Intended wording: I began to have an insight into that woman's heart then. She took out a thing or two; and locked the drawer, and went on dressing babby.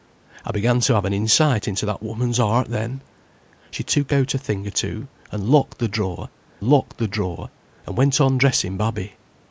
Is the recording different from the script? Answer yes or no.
yes